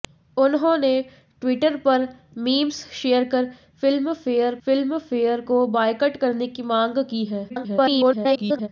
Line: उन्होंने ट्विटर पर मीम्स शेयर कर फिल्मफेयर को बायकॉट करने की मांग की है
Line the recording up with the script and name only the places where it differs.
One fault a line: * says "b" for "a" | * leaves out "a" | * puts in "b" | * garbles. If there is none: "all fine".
* puts in "फिल्मफेयर"
* garbles